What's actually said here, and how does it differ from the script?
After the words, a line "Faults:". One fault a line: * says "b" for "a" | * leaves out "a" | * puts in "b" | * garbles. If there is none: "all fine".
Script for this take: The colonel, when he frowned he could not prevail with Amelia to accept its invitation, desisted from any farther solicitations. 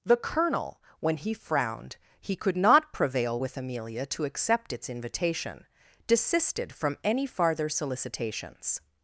The colonel, when he frowned he could not prevail with Amelia to accept its invitation, desisted from any farther solicitations.
Faults:
all fine